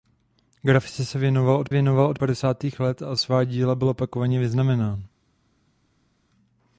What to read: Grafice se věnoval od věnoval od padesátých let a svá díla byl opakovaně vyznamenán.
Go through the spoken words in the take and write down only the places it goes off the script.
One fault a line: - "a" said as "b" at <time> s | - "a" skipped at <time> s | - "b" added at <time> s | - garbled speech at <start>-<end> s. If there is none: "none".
none